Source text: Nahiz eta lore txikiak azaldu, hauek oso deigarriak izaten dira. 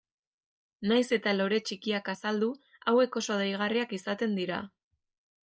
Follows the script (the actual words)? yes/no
yes